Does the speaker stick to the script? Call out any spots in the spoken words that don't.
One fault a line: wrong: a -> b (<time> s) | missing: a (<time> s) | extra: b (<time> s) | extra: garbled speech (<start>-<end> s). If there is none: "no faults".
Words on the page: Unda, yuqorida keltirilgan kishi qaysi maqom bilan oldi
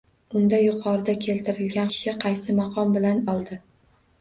no faults